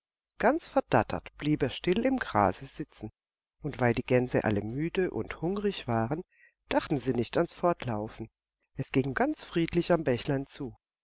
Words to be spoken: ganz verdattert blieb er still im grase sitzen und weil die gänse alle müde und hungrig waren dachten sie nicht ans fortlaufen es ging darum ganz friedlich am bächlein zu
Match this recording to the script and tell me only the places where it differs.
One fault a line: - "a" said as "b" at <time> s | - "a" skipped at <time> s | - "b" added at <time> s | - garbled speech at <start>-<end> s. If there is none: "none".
- "darum" skipped at 9.2 s